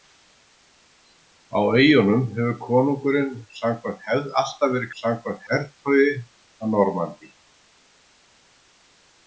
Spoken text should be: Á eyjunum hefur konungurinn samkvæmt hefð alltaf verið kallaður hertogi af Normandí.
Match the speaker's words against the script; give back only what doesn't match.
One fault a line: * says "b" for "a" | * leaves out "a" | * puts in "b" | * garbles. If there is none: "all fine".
* says "samkvæmt" for "kallaður"